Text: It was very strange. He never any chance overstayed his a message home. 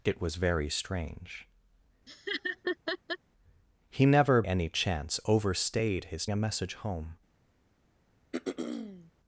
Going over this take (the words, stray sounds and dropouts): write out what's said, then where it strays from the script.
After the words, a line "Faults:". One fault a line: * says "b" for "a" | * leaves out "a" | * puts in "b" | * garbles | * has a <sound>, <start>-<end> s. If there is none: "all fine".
It was very strange. He never any chance overstayed his a message home.
Faults:
* has a laugh, 2.1-3.2 s
* has a throat clearing, 8.3-9.1 s